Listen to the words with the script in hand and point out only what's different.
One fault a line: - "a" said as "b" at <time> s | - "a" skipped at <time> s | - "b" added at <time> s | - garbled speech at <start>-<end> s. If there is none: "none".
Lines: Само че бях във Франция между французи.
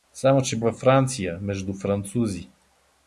- "бях" skipped at 0.6 s